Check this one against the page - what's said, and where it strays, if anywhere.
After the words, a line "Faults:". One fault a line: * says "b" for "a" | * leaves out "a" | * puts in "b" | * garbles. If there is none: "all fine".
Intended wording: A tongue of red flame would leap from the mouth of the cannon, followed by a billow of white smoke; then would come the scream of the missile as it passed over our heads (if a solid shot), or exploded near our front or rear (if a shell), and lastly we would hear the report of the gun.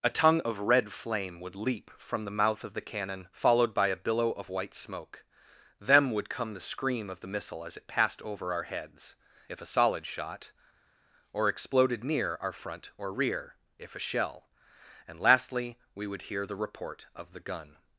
A tongue of red flame would leap from the mouth of the cannon, followed by a billow of white smoke; them would come the scream of the missile as it passed over our heads (if a solid shot), or exploded near our front or rear (if a shell), and lastly we would hear the report of the gun.
Faults:
* says "them" for "then"